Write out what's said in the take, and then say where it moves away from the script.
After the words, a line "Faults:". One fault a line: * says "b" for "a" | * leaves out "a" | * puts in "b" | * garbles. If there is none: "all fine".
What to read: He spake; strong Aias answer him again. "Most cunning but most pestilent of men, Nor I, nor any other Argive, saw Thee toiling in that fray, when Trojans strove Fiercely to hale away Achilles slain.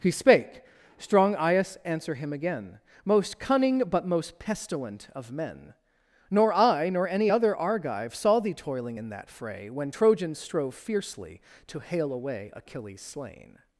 He spake; strong Aias answer him again. "Most cunning but most pestilent of men, Nor I, nor any other Argive, saw Thee toiling in that fray, when Trojans strove Fiercely to hale away Achilles slain.
Faults:
all fine